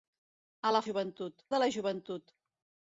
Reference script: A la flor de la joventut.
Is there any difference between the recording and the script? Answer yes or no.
yes